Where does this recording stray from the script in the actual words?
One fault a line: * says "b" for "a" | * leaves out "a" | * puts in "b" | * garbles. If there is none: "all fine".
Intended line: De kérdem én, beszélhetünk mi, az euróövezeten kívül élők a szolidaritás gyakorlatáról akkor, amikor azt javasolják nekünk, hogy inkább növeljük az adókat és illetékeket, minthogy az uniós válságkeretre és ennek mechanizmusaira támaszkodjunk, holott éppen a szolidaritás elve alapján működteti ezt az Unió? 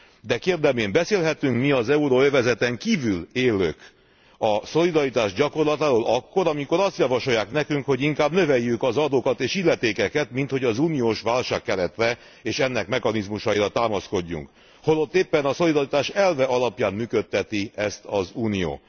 all fine